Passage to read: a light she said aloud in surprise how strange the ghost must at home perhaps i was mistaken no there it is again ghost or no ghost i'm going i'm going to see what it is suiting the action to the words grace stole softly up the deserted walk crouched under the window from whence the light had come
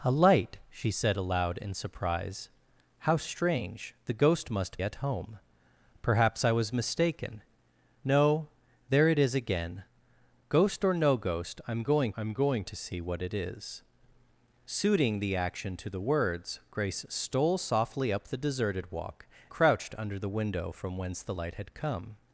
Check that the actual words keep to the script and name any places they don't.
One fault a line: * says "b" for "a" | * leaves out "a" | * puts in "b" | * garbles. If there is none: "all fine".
all fine